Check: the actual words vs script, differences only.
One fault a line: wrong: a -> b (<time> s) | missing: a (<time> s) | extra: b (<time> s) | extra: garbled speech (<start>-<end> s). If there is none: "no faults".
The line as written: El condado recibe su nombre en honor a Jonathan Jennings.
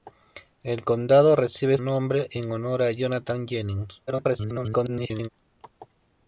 missing: su (1.8 s)
extra: garbled speech (4.1-5.3 s)